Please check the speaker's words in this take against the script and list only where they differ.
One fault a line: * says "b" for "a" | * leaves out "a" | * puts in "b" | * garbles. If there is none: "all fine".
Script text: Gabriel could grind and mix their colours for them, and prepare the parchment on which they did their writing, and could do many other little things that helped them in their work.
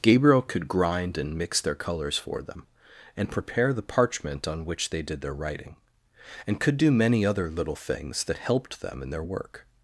all fine